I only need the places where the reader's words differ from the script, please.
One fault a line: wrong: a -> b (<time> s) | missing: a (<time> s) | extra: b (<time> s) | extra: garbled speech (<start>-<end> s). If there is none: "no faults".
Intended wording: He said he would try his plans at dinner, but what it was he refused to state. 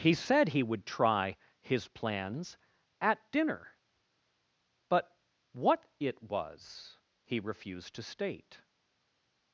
no faults